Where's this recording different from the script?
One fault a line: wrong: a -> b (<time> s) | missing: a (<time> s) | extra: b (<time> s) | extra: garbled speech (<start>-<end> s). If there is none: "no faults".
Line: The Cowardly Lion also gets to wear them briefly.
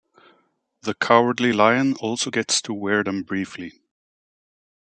no faults